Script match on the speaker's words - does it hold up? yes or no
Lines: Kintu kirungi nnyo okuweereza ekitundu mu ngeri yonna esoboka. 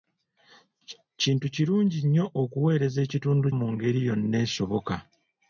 yes